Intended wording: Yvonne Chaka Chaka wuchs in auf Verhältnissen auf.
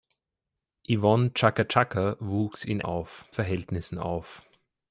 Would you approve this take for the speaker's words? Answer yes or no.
yes